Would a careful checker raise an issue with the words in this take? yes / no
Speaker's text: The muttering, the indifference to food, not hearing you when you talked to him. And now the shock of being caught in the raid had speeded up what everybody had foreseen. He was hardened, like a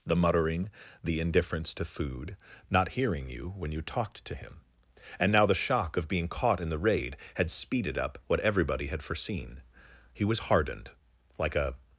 no